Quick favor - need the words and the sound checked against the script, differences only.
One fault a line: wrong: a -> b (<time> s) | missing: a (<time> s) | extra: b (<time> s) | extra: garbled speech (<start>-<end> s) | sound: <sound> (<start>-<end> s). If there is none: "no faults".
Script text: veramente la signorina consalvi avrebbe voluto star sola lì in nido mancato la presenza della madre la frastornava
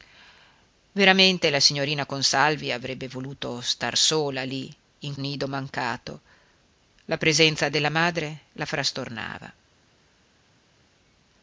no faults